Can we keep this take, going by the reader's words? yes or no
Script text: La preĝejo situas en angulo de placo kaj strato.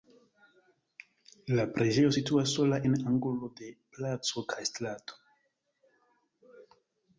no